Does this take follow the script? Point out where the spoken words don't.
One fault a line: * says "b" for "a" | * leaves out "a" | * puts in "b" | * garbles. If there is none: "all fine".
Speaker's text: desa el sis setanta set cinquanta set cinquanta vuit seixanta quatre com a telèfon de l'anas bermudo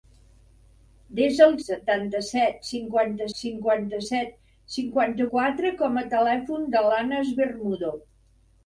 * leaves out "sis"
* puts in "cinquanta"
* leaves out "vuit seixanta"